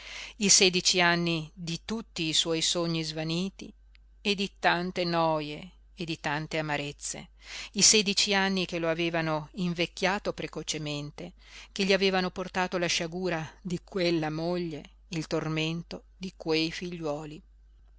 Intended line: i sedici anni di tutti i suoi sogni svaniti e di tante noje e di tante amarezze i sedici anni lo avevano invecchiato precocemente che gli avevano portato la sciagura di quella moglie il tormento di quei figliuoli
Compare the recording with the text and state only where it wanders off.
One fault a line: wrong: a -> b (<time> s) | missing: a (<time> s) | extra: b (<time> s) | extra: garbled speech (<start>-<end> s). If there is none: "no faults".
extra: che (8.7 s)